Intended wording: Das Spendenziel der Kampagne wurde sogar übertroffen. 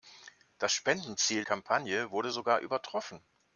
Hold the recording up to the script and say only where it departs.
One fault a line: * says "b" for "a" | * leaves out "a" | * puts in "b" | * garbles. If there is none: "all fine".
* leaves out "der"